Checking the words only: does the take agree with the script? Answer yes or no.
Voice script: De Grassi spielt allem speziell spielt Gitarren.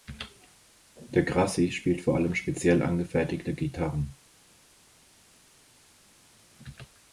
no